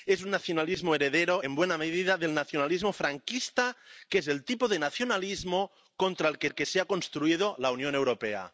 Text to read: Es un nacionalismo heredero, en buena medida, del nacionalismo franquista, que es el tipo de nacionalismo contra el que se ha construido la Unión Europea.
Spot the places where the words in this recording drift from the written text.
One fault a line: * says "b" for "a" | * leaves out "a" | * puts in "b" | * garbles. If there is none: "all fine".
* puts in "el que"